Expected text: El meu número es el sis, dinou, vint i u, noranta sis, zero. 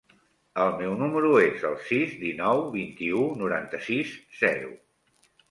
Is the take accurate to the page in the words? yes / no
yes